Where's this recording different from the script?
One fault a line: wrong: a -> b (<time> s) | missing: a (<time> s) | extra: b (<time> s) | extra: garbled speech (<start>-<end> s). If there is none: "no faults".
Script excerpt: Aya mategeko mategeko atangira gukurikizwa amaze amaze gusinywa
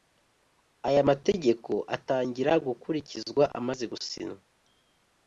missing: mategeko (1.7 s)
missing: amaze (3.8 s)